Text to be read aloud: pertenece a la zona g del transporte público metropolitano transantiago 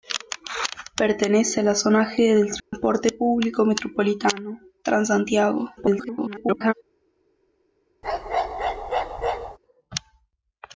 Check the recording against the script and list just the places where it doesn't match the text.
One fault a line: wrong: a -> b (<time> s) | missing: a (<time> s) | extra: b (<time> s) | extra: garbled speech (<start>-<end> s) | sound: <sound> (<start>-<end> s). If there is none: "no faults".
sound: dropout (2.6-2.7 s)
extra: garbled speech (5.8-6.7 s)
sound: bark (8.0-9.6 s)